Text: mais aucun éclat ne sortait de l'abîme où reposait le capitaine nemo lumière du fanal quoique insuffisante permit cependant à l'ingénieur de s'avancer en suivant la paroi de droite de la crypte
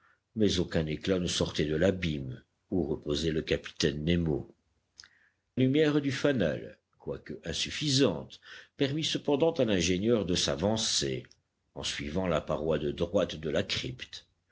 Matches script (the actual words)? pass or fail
pass